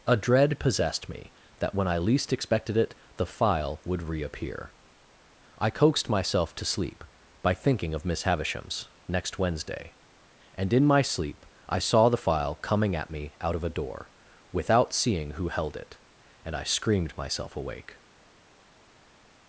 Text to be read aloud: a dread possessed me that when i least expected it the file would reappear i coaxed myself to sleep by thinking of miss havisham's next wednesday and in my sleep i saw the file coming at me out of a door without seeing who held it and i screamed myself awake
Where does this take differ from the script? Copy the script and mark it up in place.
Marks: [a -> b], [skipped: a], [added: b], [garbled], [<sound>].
a dread possessed me that when i least expected it the file would reappear i coaxed myself to sleep by thinking of miss havisham's next wednesday and in my sleep i saw the file coming at me out of a door without seeing who held it and i screamed myself awake